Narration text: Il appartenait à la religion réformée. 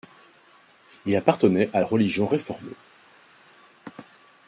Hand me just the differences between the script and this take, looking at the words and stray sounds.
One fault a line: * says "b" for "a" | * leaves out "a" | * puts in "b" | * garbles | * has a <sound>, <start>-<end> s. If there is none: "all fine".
all fine